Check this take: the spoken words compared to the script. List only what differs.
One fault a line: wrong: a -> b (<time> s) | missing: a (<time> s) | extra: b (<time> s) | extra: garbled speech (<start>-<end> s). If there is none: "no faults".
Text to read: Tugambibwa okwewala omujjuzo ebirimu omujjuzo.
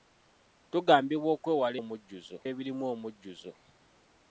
no faults